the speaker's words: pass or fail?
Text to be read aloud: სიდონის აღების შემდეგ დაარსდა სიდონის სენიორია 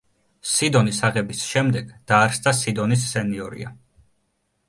pass